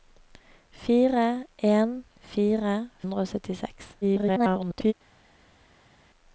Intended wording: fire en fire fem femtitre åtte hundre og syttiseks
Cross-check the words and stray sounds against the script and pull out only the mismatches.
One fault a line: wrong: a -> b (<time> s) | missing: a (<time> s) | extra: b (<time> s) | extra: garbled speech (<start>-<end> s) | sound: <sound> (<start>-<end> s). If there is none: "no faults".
missing: fem femtitre åtte (2.7 s)
extra: garbled speech (4.0-4.9 s)